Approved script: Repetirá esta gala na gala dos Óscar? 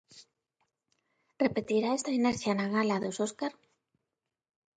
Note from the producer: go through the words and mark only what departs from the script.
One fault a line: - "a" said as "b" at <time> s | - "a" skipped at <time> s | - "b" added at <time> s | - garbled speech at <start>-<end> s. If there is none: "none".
- "gala" said as "inercia" at 2.2 s